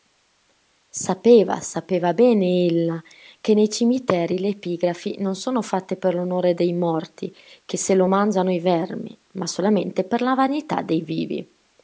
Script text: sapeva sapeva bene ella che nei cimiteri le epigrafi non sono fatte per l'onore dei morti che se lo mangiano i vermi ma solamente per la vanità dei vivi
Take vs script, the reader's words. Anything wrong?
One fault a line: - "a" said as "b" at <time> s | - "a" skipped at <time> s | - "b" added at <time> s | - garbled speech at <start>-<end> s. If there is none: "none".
none